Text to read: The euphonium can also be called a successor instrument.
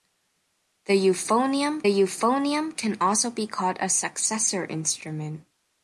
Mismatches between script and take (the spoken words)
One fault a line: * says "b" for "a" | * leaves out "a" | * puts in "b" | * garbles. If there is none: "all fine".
* puts in "euphonium"